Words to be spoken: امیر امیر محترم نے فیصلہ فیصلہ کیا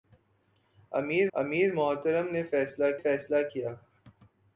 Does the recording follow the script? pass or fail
pass